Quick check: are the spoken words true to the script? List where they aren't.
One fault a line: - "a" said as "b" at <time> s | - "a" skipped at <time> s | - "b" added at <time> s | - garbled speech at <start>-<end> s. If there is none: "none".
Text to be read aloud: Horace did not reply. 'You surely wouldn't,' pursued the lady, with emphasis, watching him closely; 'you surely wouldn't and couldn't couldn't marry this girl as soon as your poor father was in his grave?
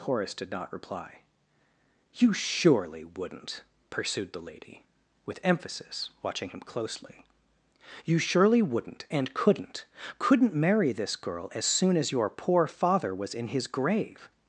none